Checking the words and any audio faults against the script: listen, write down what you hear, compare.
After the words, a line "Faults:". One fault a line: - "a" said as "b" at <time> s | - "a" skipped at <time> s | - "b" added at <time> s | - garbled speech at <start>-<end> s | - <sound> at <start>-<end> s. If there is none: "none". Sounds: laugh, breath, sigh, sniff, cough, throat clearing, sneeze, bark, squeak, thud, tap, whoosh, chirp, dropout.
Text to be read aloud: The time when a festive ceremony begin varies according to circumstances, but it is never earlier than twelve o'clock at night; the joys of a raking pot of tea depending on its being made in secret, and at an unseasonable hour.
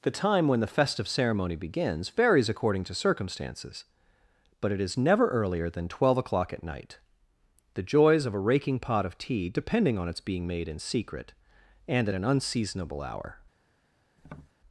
The time when the festive ceremony begins varies according to circumstances, but it is never earlier than twelve o'clock at night; the joys of a raking pot of tea depending on its being made in secret, and at an unseasonable hour.
Faults:
- "a" said as "the" at 0.6 s
- "begin" said as "begins" at 1.6 s
- tap at 14.2-14.5 s